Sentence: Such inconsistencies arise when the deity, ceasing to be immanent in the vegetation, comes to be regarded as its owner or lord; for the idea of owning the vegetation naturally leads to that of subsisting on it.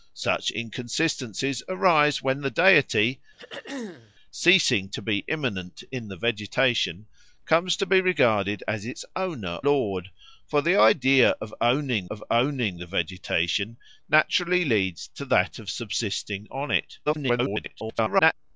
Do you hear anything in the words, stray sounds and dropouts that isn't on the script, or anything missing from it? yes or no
yes